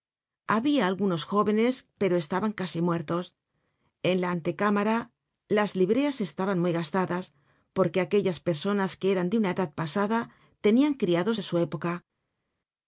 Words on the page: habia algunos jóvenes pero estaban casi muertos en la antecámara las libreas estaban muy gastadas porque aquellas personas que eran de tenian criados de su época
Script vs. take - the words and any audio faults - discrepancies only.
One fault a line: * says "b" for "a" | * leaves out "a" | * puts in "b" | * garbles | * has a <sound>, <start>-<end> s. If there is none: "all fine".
* puts in "una edad pasada"